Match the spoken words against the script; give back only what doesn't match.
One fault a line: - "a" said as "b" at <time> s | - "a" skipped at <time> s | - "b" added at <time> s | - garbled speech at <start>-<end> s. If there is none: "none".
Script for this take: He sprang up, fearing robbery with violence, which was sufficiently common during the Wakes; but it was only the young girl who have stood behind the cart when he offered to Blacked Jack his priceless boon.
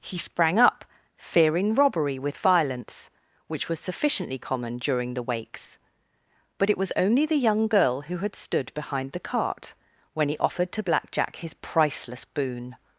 - "have" said as "had" at 8.2 s
- "Blacked" said as "Black" at 10.8 s